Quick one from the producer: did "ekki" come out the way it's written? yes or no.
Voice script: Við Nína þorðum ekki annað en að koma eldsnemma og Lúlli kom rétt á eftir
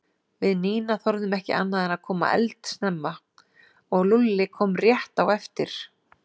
yes